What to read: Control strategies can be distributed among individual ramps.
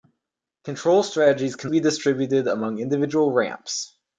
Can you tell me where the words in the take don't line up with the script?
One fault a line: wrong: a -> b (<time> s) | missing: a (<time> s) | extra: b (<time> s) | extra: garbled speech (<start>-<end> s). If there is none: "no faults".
no faults